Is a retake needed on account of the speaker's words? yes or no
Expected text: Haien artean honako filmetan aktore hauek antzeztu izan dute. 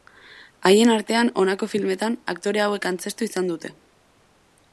no